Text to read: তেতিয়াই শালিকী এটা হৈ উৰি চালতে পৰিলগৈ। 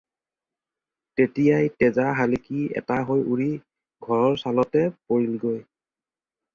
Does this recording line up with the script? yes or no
no